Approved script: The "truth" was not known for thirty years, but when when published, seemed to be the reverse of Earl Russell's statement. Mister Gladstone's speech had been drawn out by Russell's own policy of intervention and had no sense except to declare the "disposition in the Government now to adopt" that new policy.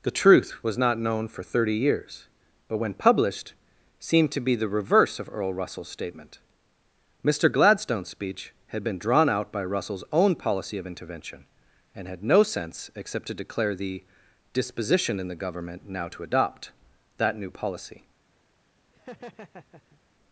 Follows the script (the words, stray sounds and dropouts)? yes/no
no